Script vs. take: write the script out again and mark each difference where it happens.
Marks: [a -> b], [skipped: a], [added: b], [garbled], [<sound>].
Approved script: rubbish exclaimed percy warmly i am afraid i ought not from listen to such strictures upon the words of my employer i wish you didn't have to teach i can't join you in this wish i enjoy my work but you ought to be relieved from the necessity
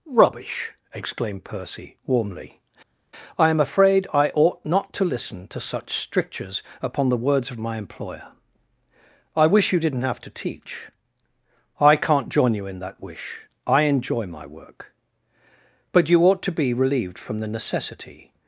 rubbish exclaimed percy warmly i am afraid i ought not [from -> to] listen to such strictures upon the words of my employer i wish you didn't have to teach i can't join you in [this -> that] wish i enjoy my work but you ought to be relieved from the necessity